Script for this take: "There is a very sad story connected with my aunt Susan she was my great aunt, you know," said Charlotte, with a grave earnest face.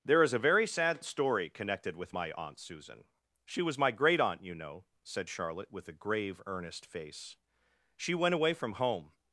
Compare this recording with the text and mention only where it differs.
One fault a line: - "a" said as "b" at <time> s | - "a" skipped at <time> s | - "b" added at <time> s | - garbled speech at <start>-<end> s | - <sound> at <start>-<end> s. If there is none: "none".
- "She went away from home" added at 8.0 s